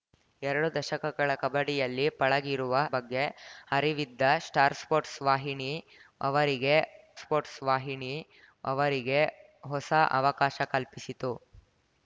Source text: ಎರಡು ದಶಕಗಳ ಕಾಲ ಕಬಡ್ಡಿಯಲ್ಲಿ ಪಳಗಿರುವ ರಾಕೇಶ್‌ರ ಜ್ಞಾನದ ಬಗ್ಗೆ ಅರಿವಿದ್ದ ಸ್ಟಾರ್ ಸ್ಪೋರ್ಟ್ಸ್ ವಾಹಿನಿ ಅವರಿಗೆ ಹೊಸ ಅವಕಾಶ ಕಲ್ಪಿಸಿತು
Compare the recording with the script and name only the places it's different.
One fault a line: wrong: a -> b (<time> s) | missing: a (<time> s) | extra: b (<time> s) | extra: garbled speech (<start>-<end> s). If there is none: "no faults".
missing: ಕಾಲ (1.3 s)
missing: ರಾಕೇಶ್‌ರ ಜ್ಞಾನದ (2.7 s)
extra: ಸ್ಪೋರ್ಟ್ಸ್ ವಾಹಿನಿ ಅವರಿಗೆ (7.2 s)